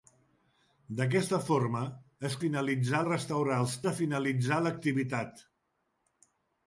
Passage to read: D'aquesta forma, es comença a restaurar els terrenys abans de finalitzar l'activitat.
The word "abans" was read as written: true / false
false